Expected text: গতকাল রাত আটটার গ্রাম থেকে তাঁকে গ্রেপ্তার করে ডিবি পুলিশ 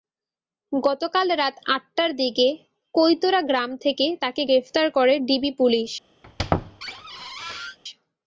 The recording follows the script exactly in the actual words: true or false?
false